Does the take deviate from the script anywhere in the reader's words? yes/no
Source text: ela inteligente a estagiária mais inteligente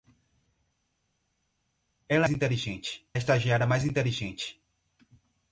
no